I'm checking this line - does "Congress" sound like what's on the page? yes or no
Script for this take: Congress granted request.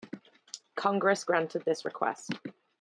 yes